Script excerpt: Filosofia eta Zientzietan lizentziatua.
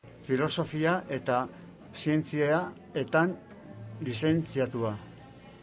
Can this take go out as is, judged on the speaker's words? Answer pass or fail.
pass